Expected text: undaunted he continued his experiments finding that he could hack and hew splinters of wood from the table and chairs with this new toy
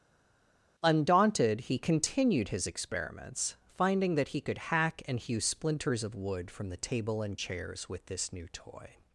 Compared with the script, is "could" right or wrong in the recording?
right